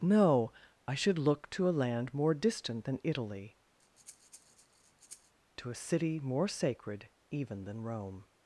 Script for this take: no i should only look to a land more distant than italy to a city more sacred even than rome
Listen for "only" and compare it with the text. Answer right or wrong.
wrong